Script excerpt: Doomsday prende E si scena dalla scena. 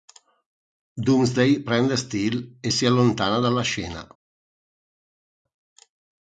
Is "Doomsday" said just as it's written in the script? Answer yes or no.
yes